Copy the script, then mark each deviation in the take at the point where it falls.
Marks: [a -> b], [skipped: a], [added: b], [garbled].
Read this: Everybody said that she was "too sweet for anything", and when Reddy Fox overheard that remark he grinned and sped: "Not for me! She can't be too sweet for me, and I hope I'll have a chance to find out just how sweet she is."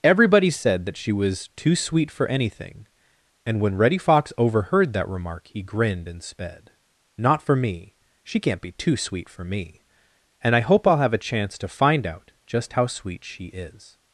Everybody said that she was "too sweet for anything", and when Reddy Fox overheard that remark he grinned and sped: "Not for me! She can't be too sweet for me, and I hope I'll have a chance to find out just how sweet she is."